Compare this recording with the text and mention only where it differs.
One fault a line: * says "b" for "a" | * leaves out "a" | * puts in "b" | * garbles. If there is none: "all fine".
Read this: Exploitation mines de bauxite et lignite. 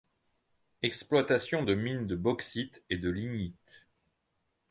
* puts in "de"
* puts in "de"